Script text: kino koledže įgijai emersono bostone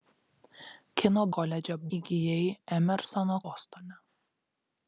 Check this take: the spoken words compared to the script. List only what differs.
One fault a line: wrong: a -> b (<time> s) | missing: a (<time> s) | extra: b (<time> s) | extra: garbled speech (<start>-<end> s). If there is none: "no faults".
no faults